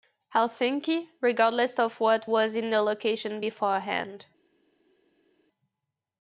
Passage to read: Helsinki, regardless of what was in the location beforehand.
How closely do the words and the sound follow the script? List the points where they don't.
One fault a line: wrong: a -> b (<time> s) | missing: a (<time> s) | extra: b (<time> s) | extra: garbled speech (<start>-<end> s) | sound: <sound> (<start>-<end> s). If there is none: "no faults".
no faults